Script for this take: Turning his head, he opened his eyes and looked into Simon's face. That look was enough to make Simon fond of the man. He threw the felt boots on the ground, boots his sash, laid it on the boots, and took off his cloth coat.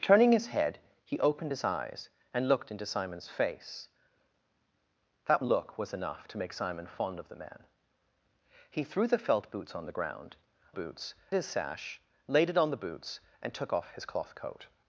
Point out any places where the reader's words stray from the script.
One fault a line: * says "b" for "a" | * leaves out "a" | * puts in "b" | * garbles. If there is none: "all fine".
all fine